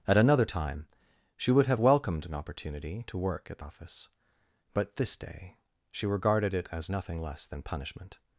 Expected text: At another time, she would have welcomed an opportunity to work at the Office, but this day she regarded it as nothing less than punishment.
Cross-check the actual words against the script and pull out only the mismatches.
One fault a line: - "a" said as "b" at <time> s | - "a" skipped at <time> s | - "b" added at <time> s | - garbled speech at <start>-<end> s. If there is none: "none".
none